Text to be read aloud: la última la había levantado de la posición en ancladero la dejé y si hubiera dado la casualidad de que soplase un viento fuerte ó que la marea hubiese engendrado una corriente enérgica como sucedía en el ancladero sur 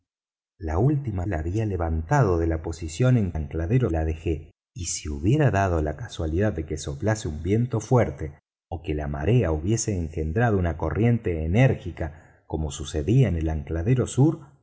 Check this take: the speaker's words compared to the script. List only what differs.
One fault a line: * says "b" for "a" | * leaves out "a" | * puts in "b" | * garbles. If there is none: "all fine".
all fine